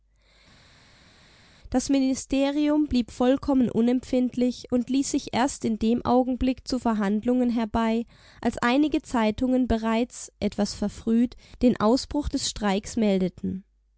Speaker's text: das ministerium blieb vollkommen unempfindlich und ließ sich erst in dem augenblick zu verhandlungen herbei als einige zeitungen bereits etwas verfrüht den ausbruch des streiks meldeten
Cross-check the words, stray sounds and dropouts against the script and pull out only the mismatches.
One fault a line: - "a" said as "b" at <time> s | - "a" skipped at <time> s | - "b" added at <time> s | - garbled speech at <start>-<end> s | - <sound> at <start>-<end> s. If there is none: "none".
none